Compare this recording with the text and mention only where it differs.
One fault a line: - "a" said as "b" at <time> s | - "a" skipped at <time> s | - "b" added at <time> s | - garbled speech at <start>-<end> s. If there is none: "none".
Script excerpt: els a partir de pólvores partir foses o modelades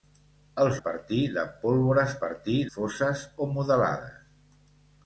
none